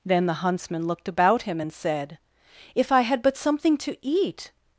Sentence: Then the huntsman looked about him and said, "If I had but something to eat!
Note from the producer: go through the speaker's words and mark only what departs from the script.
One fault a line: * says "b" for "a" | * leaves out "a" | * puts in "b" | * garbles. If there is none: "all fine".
all fine